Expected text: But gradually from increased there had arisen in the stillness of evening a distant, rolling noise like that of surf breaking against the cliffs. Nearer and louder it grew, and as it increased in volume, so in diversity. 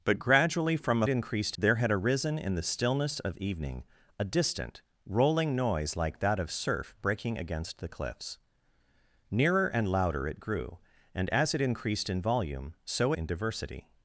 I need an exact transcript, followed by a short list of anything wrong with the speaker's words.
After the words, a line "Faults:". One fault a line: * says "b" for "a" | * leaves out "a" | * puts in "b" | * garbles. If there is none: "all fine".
But gradually from increased there had arisen in the stillness of evening a distant, rolling noise like that of surf breaking against the cliffs. Nearer and louder it grew, and as it increased in volume, so in diversity.
Faults:
all fine